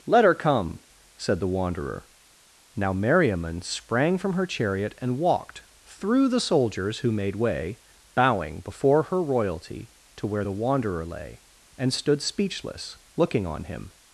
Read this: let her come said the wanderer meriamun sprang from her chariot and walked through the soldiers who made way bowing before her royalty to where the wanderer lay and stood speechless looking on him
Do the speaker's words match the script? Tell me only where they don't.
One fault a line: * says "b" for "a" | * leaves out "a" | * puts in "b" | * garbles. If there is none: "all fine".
* puts in "now"